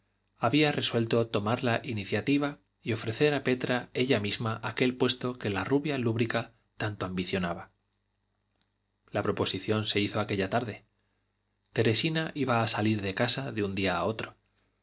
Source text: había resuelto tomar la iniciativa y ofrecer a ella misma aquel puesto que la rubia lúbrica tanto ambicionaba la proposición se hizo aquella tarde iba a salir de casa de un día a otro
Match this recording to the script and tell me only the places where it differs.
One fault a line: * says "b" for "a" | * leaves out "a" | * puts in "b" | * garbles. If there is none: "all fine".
* puts in "petra"
* puts in "teresina"